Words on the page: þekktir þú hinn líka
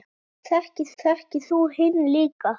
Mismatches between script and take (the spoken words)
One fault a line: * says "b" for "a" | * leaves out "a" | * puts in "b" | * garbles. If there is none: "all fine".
* puts in "þekktir"